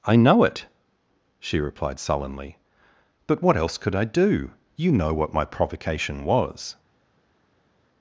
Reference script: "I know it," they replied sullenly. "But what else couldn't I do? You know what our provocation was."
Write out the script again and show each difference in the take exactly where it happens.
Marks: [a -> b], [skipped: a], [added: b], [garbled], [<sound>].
"I know it," [they -> she] replied sullenly. "But what else [couldn't -> could] I do? You know what [our -> my] provocation was."